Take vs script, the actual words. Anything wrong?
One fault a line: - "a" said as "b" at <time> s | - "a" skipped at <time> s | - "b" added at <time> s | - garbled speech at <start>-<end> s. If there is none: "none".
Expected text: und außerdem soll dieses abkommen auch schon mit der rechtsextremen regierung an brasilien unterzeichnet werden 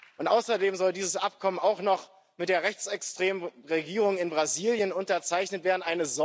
- "schon" said as "noch" at 1.8 s
- "an" said as "in" at 4.2 s